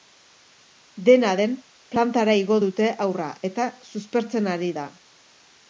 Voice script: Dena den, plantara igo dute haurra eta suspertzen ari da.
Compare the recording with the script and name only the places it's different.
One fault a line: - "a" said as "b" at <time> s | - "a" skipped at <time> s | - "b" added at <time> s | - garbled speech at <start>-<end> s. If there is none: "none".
none